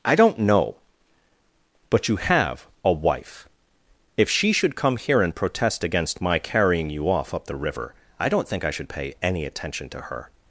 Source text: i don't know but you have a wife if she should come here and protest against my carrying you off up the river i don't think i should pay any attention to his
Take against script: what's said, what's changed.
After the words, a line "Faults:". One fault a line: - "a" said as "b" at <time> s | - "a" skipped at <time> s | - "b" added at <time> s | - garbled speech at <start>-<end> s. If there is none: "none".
i don't know but you have a wife if she should come here and protest against my carrying you off up the river i don't think i should pay any attention to her
Faults:
- "his" said as "her" at 10.0 s